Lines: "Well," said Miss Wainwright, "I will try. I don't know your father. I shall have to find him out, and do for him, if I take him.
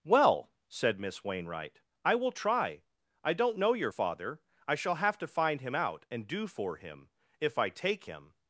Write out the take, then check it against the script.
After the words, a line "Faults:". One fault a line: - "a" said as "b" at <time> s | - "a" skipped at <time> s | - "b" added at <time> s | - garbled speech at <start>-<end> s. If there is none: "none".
"Well," said Miss Wainwright, "I will try. I don't know your father. I shall have to find him out, and do for him, if I take him.
Faults:
none